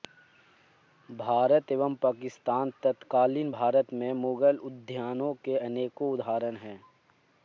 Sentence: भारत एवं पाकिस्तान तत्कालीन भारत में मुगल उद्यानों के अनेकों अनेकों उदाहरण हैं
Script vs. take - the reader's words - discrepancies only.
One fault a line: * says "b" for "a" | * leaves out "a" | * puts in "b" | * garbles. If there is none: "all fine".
* leaves out "अनेकों"